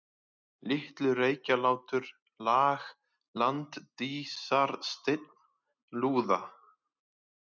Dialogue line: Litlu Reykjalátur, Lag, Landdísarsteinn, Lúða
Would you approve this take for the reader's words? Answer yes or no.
yes